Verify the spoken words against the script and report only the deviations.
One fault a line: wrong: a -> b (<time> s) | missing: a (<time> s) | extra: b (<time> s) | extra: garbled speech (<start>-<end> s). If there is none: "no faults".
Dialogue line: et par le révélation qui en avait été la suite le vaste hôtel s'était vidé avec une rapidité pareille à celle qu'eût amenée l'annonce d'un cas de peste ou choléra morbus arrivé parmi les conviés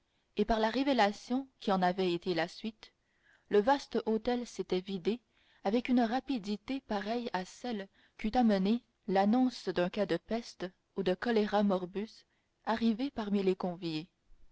wrong: le -> la (0.6 s)
extra: de (11.0 s)